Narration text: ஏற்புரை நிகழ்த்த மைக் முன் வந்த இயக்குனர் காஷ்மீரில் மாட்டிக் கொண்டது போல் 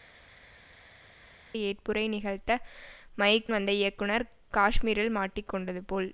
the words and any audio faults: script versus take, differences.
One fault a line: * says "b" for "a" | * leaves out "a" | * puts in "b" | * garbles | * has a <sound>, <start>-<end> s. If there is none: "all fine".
* leaves out "முன்"